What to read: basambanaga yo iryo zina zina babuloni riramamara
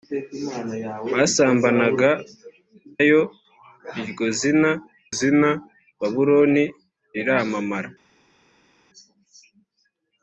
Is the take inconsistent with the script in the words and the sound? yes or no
no